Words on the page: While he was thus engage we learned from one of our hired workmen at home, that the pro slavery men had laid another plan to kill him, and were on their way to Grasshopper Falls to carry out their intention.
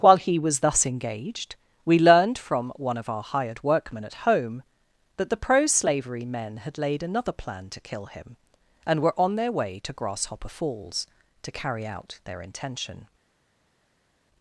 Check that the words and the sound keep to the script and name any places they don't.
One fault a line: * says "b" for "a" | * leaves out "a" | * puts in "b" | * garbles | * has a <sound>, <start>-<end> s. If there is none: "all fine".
* says "engaged" for "engage"